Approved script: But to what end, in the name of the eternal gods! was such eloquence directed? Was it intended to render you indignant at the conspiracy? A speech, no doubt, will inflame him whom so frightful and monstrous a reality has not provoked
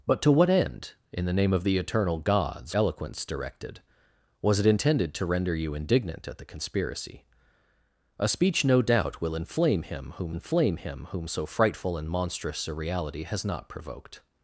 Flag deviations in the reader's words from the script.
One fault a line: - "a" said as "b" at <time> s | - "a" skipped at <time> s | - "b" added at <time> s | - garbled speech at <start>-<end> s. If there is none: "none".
- "was such" skipped at 2.8 s
- "inflame him whom" added at 10.3 s